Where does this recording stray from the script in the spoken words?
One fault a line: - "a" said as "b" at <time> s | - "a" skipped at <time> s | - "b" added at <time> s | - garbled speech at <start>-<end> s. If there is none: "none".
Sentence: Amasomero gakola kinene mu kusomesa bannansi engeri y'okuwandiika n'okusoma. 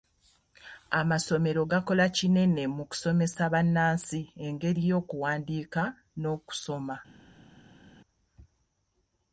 none